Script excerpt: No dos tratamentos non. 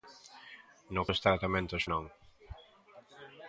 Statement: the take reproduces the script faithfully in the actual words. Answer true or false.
true